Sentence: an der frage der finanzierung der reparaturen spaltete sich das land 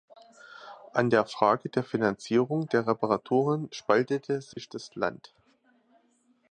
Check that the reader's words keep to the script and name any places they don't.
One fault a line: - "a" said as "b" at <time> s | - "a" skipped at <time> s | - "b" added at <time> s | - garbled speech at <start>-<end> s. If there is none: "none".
none